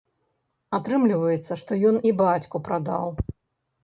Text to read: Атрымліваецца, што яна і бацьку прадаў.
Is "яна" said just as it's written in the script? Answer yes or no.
no